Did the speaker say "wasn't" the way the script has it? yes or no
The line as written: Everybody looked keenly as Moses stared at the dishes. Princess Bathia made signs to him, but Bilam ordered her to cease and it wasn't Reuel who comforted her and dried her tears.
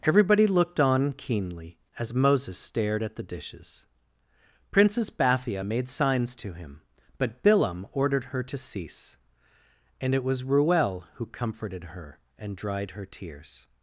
no